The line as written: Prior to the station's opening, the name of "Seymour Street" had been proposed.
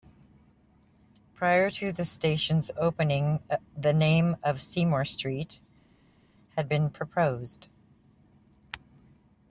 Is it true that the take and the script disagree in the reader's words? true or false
false